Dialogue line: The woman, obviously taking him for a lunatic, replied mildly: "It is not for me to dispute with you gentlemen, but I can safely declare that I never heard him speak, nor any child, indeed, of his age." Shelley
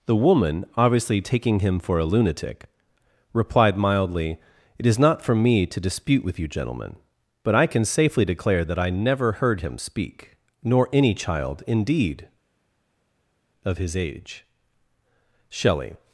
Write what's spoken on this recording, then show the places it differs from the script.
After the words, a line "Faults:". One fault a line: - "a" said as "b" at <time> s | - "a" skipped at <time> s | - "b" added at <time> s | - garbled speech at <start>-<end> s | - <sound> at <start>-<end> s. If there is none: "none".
The woman, obviously taking him for a lunatic, replied mildly: "It is not for me to dispute with you gentlemen, but I can safely declare that I never heard him speak, nor any child, indeed, of his age." Shelley
Faults:
none